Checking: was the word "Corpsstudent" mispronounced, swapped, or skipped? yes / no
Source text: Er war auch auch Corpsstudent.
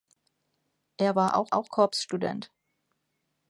no